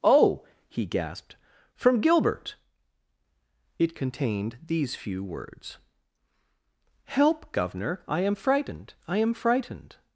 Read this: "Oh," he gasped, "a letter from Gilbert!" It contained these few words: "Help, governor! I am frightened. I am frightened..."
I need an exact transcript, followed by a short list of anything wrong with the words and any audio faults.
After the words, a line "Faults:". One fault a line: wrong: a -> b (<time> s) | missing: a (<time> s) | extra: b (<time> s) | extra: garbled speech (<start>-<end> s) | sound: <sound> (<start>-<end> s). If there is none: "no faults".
"Oh," he gasped, "from Gilbert!" It contained these few words: "Help, governor! I am frightened. I am frightened..."
Faults:
missing: a letter (1.4 s)